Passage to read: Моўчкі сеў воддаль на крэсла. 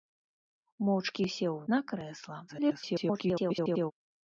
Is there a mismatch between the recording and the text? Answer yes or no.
yes